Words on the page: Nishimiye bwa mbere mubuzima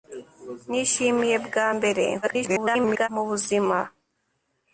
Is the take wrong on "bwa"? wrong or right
right